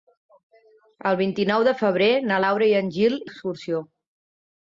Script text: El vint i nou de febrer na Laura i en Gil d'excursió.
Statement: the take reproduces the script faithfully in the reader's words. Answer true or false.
true